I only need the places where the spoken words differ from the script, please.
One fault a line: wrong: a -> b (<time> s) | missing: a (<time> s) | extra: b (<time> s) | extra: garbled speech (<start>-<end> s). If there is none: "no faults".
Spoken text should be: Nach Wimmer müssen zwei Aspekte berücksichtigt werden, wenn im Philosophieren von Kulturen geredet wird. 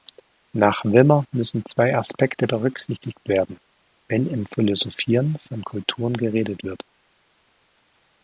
no faults